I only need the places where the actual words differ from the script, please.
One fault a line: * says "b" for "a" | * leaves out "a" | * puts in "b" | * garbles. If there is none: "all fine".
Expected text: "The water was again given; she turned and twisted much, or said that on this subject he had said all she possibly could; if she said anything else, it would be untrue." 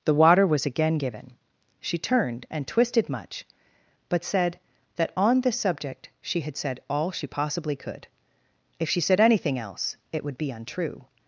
* says "but" for "or"
* says "she" for "he"